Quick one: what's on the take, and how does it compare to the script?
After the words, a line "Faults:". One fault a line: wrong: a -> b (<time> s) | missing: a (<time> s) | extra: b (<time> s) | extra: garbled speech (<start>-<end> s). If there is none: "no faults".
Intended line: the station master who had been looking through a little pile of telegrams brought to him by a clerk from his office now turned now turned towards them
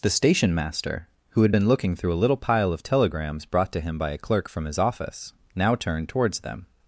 the station master who had been looking through a little pile of telegrams brought to him by a clerk from his office now turned towards them
Faults:
missing: now turned (6.1 s)